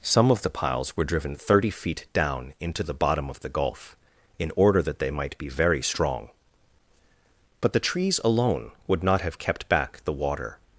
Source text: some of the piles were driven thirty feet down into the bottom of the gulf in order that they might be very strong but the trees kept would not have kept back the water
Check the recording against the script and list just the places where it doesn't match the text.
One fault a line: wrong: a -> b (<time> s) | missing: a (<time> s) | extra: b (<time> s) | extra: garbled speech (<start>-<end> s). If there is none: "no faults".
wrong: kept -> alone (8.2 s)